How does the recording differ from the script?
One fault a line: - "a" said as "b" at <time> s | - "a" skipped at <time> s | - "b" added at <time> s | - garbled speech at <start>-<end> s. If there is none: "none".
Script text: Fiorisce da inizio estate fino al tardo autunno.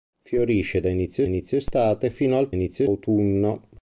- "inizio" added at 1.2 s
- "tardo" said as "inizio" at 2.5 s